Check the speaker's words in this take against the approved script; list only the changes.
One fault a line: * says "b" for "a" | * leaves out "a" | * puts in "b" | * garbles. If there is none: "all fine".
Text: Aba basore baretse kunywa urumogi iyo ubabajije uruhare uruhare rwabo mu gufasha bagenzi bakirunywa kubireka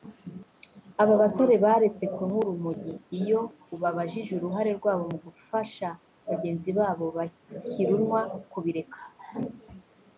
* leaves out "uruhare"
* puts in "babo"